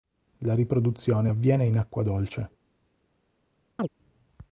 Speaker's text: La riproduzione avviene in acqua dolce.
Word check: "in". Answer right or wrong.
right